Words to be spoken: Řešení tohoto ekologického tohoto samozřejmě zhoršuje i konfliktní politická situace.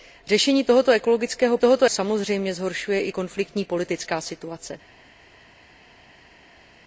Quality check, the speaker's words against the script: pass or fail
pass